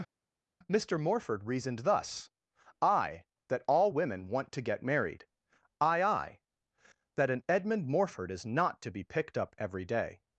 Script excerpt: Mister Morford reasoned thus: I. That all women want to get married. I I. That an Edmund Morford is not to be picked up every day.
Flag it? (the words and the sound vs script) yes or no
no